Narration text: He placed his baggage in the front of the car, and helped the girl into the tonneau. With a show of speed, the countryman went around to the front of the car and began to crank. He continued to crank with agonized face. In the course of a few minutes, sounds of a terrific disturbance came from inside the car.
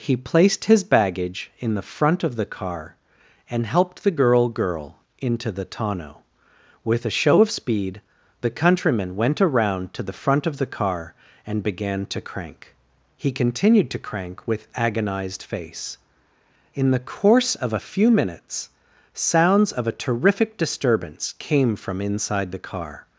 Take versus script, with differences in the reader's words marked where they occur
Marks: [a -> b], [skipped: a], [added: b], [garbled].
He placed his baggage in the front of the car, and helped the girl [added: girl] into the tonneau. With a show of speed, the countryman went around to the front of the car and began to crank. He continued to crank with agonized face. In the course of a few minutes, sounds of a terrific disturbance came from inside the car.